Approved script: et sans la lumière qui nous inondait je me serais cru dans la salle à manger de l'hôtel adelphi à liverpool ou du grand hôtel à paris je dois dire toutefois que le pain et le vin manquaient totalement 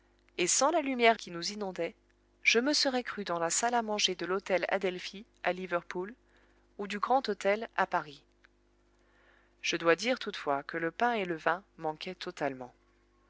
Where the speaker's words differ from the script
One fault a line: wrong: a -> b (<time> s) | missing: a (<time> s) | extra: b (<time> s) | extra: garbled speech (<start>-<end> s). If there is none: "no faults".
no faults